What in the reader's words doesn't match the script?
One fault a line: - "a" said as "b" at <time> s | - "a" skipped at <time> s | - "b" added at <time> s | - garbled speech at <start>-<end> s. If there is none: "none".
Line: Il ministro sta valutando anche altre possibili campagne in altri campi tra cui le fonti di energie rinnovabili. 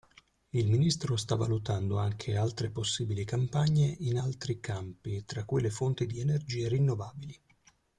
none